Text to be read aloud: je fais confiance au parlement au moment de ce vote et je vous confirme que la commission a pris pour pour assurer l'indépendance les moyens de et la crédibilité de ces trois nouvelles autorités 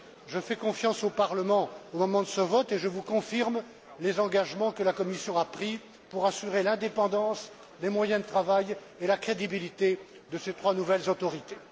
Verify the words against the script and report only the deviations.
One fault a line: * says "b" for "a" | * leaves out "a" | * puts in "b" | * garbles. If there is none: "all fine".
* puts in "les engagements"
* leaves out "pour"
* puts in "travail"